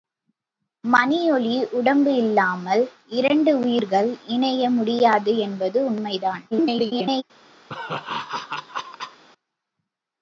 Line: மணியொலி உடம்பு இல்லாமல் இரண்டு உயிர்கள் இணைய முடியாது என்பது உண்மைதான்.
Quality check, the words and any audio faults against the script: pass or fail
fail